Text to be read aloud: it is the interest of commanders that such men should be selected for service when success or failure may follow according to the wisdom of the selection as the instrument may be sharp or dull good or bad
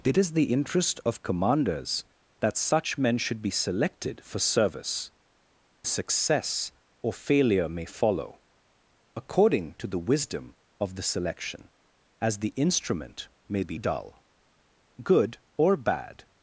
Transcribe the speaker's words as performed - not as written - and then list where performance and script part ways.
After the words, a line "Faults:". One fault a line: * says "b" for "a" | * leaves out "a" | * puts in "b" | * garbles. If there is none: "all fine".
it is the interest of commanders that such men should be selected for service success or failure may follow according to the wisdom of the selection as the instrument may be dull good or bad
Faults:
* leaves out "when"
* leaves out "sharp or"